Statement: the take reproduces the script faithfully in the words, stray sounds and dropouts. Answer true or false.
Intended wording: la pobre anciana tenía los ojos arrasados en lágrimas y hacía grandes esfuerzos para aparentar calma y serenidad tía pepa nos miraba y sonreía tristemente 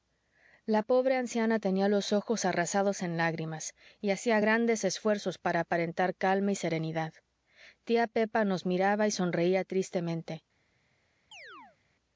false